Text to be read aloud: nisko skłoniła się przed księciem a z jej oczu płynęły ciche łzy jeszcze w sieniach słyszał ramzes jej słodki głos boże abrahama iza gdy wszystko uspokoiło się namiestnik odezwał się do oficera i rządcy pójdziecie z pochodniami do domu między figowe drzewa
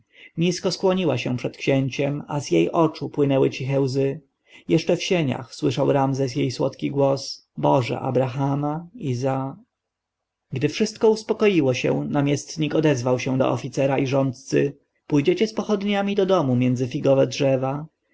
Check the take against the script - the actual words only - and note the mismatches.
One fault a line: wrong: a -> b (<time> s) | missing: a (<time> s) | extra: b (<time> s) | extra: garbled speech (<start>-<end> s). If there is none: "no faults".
no faults